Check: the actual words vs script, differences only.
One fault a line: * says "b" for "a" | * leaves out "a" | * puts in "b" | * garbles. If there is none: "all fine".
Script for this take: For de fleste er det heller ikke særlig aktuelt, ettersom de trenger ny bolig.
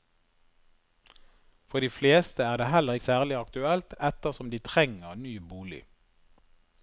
* leaves out "ikke"